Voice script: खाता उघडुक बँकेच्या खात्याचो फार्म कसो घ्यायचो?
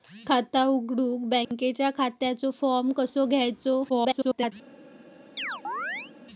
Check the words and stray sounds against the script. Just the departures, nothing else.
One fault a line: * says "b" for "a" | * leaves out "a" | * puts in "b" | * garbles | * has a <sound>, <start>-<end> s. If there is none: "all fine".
* has a dropout, 1.4-1.5 s
* garbles
* has a chirp, 5.4-6.1 s